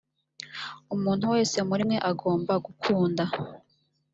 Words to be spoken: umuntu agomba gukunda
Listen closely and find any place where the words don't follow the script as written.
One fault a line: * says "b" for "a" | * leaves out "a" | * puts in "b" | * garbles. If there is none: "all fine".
* puts in "wese muri mwe"